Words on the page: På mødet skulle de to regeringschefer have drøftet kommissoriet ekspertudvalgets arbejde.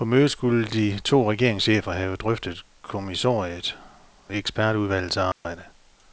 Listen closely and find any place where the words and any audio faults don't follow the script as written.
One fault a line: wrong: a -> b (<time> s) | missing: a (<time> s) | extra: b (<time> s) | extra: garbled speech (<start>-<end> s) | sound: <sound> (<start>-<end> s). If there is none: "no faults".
sound: dropout (5.3-5.4 s)